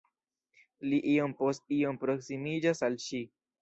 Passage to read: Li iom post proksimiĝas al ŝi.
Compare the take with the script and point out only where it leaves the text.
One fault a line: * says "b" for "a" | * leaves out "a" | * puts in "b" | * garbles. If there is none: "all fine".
* puts in "iom"